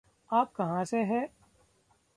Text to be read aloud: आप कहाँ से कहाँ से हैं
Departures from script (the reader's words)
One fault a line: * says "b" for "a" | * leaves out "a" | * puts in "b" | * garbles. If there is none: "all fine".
* leaves out "कहाँ से"